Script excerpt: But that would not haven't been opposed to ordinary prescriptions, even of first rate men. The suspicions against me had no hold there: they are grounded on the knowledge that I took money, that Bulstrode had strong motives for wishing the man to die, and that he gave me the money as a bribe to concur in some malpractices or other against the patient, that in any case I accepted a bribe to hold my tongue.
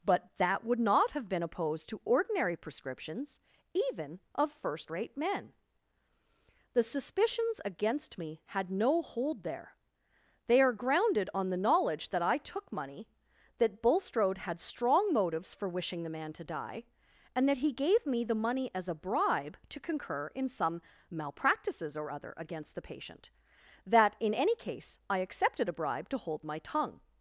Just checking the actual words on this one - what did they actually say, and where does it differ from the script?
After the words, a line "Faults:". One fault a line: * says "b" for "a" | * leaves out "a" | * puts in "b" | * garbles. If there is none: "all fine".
But that would not have been opposed to ordinary prescriptions, even of first rate men. The suspicions against me had no hold there: they are grounded on the knowledge that I took money, that Bulstrode had strong motives for wishing the man to die, and that he gave me the money as a bribe to concur in some malpractices or other against the patient, that in any case I accepted a bribe to hold my tongue.
Faults:
* says "have" for "haven't"